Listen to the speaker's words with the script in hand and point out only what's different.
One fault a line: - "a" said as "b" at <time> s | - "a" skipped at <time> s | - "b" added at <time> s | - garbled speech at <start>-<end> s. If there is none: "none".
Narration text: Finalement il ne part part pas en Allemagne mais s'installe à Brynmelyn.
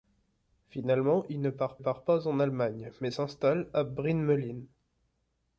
none